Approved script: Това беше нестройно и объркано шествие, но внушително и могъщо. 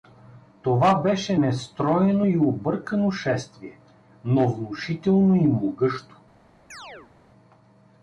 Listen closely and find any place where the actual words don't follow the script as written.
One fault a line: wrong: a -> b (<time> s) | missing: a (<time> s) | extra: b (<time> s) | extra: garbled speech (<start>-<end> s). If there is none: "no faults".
no faults